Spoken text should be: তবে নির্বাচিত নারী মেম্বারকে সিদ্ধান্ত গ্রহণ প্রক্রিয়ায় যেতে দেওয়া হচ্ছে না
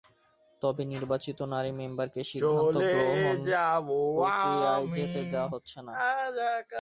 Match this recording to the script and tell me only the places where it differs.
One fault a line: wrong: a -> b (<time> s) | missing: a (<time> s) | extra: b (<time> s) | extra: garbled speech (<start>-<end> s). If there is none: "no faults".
no faults